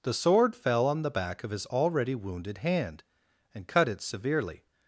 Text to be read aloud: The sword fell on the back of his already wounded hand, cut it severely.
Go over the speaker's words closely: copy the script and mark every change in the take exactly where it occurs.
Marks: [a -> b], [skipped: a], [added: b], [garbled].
The sword fell on the back of his already wounded hand, [added: and] cut it severely.